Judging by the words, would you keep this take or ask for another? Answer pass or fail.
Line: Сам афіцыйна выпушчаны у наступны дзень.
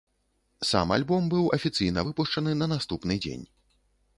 fail